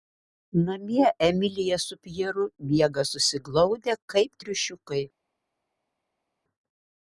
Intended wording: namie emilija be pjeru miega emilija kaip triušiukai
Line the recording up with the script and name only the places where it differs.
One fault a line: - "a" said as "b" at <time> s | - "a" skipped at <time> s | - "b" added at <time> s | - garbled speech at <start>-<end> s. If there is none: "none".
- "be" said as "su" at 1.9 s
- "emilija" said as "susiglaudę" at 3.1 s